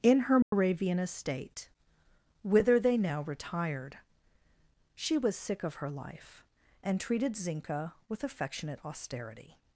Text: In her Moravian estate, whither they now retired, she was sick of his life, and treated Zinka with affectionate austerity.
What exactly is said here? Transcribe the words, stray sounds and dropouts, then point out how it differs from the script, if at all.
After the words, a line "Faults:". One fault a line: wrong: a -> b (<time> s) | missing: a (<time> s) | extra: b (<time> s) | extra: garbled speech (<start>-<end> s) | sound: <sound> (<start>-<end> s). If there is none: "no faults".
In her Moravian estate, whither they now retired, she was sick of her life, and treated Zinka with affectionate austerity.
Faults:
sound: dropout (0.4-0.5 s)
wrong: his -> her (5.8 s)